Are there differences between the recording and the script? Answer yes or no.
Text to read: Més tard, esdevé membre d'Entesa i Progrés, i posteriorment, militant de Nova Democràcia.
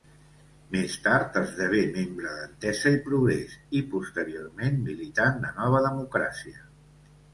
no